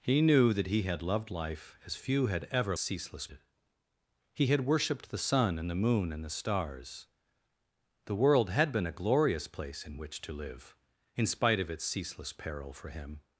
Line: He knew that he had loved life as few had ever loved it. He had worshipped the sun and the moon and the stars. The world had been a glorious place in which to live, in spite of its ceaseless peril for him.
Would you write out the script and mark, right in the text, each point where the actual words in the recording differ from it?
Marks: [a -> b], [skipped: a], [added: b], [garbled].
He knew that he had loved life as few had ever [loved -> ceaseless] it. He had worshipped the sun and the moon and the stars. The world had been a glorious place in which to live, in spite of its ceaseless peril for him.